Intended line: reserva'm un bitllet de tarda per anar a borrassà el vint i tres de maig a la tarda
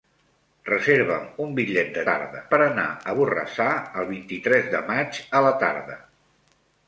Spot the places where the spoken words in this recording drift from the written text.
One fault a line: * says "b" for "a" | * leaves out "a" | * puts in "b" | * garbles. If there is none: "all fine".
all fine